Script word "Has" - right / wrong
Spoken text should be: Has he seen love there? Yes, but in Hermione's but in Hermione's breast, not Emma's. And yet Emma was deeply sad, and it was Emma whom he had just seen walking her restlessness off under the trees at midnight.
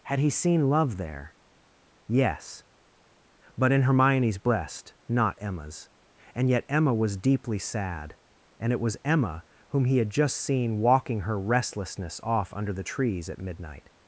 wrong